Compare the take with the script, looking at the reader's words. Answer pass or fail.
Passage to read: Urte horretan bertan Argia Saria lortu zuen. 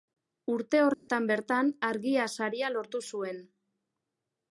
pass